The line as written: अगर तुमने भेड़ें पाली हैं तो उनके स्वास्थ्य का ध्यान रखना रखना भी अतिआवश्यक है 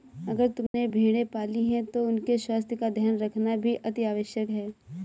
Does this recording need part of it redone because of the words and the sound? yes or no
yes